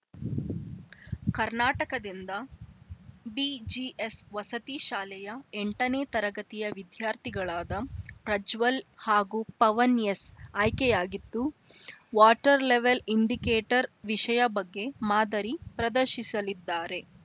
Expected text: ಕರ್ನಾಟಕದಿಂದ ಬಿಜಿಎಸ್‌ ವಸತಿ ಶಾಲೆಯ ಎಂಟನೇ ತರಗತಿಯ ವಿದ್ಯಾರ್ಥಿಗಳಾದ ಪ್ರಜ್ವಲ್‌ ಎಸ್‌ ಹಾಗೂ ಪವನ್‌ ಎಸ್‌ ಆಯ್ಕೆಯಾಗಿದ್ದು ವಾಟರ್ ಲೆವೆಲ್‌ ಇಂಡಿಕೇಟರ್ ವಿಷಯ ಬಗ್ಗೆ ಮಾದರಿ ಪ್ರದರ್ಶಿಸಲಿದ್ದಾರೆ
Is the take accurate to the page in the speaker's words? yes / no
no